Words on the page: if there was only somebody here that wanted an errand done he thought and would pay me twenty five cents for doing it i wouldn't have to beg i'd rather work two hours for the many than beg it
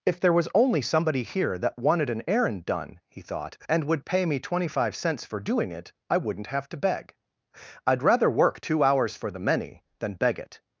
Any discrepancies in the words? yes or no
no